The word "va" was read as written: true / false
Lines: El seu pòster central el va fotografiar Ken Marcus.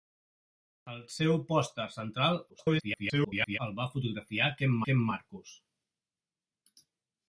true